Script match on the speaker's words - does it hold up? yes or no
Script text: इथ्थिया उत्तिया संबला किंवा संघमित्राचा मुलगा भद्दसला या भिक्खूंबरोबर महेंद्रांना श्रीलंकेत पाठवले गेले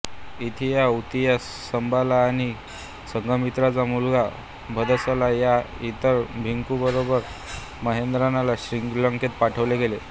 no